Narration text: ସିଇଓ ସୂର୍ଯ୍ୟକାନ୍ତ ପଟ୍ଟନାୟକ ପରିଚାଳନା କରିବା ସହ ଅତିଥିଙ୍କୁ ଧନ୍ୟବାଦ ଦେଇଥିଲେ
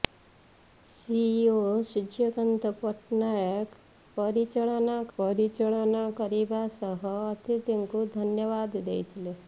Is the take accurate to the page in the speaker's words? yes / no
no